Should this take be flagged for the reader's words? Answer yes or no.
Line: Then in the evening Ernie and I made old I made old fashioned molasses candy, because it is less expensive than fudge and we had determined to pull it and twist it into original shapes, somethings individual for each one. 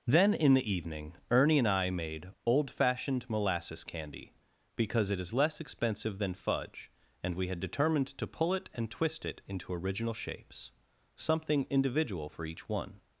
yes